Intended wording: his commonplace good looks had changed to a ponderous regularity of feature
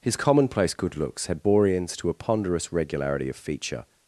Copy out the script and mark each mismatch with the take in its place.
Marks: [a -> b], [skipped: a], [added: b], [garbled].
his commonplace good looks had [changed -> boreans] to a ponderous regularity of feature